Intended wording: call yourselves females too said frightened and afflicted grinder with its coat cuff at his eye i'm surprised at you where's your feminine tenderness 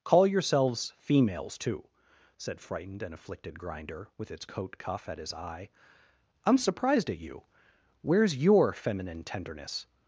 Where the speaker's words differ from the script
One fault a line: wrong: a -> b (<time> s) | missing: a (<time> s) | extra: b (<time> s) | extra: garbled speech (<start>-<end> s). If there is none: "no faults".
no faults